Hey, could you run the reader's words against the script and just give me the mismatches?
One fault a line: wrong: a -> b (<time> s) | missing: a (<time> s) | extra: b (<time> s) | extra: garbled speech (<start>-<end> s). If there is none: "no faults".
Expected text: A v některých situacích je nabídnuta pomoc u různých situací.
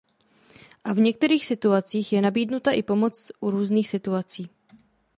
extra: i (2.7 s)